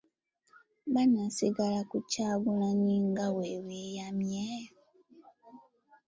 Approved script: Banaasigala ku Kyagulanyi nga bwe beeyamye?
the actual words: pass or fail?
pass